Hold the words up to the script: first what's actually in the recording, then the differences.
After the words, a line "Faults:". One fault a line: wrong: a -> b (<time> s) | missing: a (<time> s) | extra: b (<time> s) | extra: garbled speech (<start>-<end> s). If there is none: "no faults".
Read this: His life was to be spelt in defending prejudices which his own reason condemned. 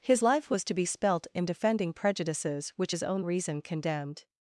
His life was to be spelt in defending prejudices which his own reason condemned.
Faults:
no faults